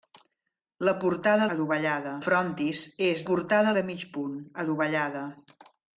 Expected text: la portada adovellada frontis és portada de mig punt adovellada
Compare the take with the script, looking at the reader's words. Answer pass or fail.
pass